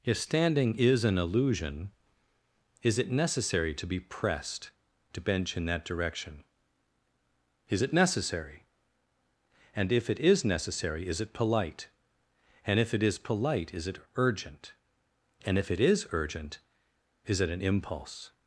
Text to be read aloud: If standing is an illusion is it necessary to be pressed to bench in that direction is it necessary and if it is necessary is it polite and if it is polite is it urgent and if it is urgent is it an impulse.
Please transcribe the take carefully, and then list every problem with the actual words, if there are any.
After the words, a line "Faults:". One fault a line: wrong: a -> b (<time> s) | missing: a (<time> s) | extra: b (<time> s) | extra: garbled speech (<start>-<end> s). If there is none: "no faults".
If standing is an illusion is it necessary to be pressed to bench in that direction is it necessary and if it is necessary is it polite and if it is polite is it urgent and if it is urgent is it an impulse.
Faults:
no faults